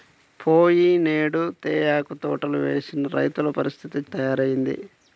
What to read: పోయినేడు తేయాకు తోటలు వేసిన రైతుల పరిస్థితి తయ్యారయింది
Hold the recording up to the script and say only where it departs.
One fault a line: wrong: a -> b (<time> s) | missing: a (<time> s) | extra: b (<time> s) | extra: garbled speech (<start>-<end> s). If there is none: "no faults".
no faults